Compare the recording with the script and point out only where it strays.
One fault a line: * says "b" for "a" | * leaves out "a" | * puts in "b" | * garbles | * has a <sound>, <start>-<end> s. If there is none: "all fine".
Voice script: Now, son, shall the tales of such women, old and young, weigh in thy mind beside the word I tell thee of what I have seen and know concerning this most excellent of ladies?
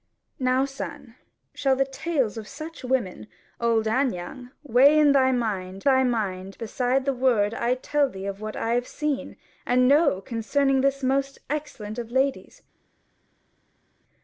* puts in "thy mind"